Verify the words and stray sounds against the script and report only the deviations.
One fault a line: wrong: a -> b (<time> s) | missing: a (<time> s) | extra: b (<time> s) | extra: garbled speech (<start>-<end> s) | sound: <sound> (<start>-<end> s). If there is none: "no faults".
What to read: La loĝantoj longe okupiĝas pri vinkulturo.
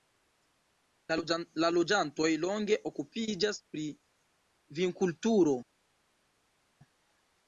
no faults